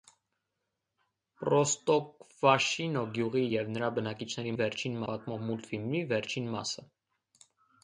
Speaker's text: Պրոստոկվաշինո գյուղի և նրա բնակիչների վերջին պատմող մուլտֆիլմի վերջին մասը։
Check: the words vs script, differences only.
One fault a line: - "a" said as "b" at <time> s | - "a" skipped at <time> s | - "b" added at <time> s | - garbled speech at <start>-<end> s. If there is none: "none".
none